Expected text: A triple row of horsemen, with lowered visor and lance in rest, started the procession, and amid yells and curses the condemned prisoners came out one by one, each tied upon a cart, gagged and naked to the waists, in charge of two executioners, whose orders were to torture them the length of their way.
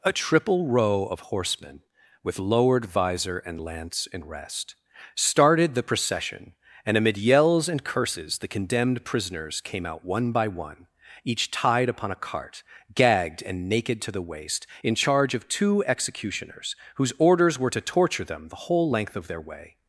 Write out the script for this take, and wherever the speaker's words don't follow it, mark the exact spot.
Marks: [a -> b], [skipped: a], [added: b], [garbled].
A triple row of horsemen, with lowered visor and lance in rest, started the procession, and amid yells and curses the condemned prisoners came out one by one, each tied upon a cart, gagged and naked to the [waists, -> waist] in charge of two executioners, whose orders were to torture them the [added: whole] length of their way.